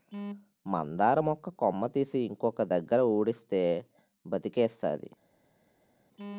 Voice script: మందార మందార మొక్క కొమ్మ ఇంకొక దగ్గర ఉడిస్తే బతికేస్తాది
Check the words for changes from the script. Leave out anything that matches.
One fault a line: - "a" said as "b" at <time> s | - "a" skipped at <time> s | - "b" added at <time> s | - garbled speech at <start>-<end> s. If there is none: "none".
- "మందార" skipped at 1.2 s
- "తీసి" added at 1.9 s